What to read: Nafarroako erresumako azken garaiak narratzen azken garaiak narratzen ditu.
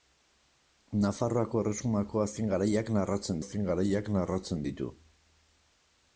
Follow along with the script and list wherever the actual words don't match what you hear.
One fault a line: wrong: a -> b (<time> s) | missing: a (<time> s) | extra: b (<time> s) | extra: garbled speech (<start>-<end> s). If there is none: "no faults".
no faults